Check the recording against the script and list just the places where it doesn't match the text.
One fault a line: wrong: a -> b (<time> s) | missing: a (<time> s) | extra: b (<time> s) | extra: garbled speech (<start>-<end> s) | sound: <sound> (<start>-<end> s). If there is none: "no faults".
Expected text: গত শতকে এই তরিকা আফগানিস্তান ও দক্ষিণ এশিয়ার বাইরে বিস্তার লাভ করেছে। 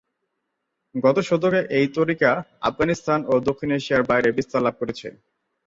no faults